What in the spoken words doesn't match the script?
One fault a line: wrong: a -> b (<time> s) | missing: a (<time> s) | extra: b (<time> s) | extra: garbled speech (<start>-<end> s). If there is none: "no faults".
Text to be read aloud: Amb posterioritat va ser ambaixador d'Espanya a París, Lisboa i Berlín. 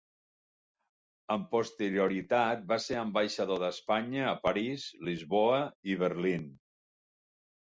no faults